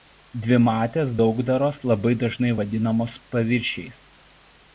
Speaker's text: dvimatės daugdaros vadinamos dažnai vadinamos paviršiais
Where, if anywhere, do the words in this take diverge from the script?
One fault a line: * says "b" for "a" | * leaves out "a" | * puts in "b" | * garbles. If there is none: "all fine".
* says "labai" for "vadinamos"